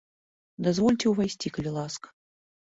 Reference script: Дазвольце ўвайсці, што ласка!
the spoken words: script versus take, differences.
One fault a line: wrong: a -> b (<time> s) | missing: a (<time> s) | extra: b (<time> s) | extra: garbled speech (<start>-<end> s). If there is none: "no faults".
wrong: што -> калі (1.6 s)